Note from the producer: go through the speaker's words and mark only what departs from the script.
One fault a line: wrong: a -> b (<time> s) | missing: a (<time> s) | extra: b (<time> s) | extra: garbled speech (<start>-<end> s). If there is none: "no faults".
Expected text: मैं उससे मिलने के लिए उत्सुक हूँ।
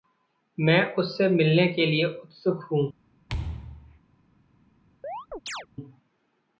no faults